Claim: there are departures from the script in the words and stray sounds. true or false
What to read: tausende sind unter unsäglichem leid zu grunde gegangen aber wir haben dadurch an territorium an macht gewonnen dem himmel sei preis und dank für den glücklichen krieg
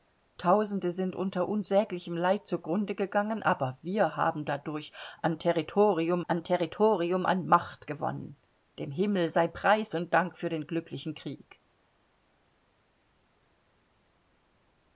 true